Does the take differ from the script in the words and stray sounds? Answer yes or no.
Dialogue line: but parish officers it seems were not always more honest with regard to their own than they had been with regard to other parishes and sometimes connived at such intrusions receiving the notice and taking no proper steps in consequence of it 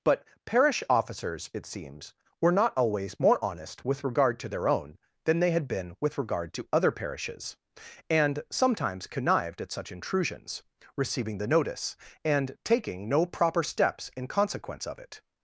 no